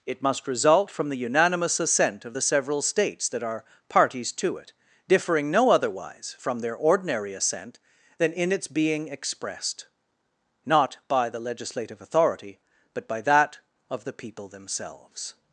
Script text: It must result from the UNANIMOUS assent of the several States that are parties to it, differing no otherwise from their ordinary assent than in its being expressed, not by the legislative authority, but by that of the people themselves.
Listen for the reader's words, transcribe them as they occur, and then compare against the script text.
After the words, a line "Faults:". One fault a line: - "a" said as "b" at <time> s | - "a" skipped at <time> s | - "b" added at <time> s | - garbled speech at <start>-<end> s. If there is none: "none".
It must result from the UNANIMOUS assent of the several States that are parties to it, differing no otherwise from their ordinary assent than in its being expressed, not by the legislative authority, but by that of the people themselves.
Faults:
none